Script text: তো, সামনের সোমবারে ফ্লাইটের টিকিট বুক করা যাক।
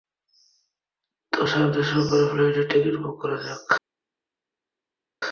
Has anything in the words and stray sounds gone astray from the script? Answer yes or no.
no